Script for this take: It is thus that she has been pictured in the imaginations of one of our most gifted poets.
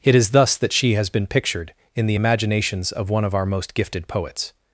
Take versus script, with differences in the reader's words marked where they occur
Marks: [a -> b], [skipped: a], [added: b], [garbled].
It is thus that she has been pictured in the imaginations of one of our most gifted poets.